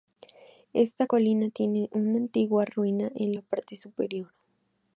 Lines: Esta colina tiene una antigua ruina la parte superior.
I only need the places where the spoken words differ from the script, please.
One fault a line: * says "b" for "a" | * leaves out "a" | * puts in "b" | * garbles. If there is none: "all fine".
* puts in "en"